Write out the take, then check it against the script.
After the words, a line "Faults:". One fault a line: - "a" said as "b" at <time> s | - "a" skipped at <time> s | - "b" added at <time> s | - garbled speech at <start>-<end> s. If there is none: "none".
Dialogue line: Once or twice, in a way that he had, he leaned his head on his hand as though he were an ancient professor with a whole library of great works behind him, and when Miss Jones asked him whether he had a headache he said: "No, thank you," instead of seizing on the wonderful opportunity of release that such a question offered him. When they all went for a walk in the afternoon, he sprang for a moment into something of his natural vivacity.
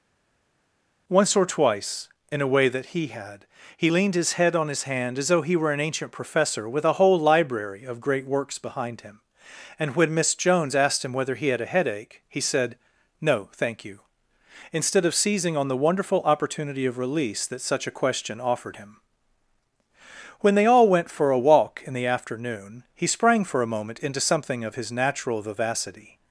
Once or twice, in a way that he had, he leaned his head on his hand as though he were an ancient professor with a whole library of great works behind him, and when Miss Jones asked him whether he had a headache he said: "No, thank you," instead of seizing on the wonderful opportunity of release that such a question offered him. When they all went for a walk in the afternoon, he sprang for a moment into something of his natural vivacity.
Faults:
none